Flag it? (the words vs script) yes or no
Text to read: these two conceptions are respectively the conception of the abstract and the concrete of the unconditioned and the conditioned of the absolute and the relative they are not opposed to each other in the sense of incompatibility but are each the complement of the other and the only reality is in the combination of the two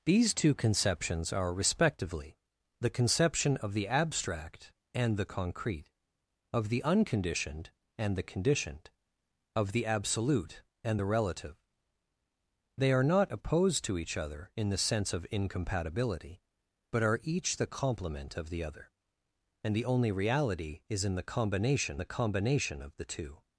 yes